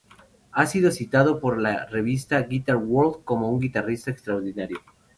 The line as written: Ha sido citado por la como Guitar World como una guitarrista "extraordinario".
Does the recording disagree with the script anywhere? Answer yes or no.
yes